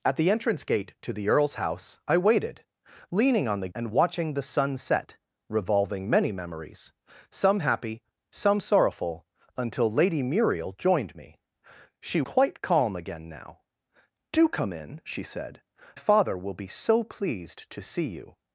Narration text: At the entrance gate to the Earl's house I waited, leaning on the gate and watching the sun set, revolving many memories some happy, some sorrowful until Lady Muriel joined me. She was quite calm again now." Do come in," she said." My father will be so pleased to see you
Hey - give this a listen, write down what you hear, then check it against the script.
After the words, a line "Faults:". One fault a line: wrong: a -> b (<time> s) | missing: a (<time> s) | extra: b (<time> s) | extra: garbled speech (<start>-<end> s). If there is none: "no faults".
At the entrance gate to the Earl's house I waited, leaning on the and watching the sun set, revolving many memories some happy, some sorrowful until Lady Muriel joined me. She quite calm again now." Do come in," she said." Father will be so pleased to see you
Faults:
missing: gate (3.7 s)
missing: was (12.2 s)
missing: My (15.6 s)